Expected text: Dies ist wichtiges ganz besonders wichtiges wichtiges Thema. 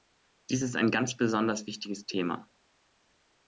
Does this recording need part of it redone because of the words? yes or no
yes